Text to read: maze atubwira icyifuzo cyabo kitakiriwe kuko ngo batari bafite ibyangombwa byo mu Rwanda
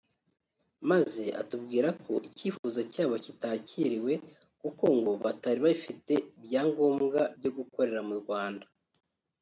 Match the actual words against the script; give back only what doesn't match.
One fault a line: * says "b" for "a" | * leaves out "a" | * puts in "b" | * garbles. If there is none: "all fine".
* puts in "ko"
* puts in "gukorera"